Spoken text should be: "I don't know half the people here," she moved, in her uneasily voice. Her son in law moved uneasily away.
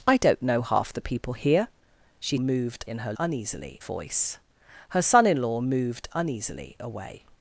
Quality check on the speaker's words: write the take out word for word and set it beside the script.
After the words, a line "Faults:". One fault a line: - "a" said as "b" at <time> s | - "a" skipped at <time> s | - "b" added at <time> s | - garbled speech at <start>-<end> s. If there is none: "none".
"I don't know half the people here," she moved, in her uneasily voice. Her son in law moved uneasily away.
Faults:
none